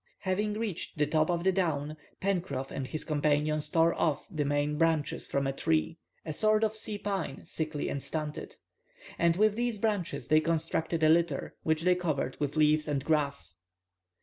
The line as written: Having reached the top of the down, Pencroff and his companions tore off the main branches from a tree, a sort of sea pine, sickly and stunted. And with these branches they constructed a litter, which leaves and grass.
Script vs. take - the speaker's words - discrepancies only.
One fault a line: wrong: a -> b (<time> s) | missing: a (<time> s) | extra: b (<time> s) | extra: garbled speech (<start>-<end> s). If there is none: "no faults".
extra: they covered with (11.8 s)